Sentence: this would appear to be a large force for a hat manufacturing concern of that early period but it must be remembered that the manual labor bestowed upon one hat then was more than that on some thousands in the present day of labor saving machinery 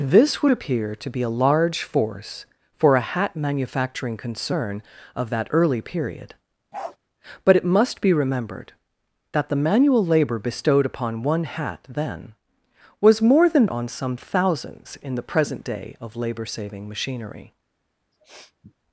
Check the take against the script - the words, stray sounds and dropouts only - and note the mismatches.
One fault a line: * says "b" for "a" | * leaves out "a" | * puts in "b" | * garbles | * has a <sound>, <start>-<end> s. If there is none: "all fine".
* has a bark, 6.7-7.0 s
* leaves out "that"
* has a sniff, 18.1-18.7 s